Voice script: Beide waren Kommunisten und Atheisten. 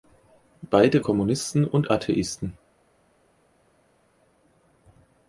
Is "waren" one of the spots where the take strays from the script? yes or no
yes